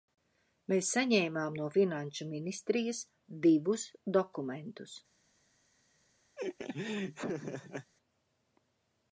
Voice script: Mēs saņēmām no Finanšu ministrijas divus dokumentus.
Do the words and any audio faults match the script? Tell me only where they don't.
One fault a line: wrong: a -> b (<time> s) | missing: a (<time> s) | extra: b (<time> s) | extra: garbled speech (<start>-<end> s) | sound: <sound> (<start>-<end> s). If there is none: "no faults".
sound: laugh (6.4-7.9 s)